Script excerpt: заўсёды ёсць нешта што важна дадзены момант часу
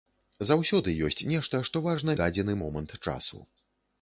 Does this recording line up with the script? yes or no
yes